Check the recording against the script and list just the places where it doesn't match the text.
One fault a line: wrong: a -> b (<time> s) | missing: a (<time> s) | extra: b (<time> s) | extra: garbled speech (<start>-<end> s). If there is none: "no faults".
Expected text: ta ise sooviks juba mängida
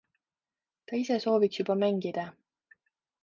no faults